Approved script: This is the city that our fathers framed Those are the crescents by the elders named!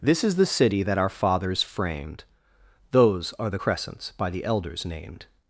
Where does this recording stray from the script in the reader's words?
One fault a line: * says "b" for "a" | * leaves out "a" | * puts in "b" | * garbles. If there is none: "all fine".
all fine